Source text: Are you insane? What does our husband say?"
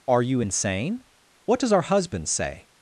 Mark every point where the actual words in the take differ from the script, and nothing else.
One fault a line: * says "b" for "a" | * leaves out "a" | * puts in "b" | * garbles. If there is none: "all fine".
all fine